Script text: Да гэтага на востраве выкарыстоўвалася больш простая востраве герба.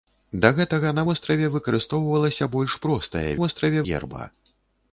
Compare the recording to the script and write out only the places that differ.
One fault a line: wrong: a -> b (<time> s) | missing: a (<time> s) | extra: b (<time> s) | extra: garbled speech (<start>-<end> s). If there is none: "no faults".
no faults